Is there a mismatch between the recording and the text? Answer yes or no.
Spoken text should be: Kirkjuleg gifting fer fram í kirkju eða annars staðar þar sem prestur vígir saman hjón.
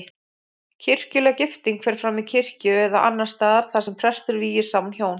no